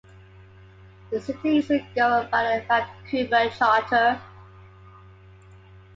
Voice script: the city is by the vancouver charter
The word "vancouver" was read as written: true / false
true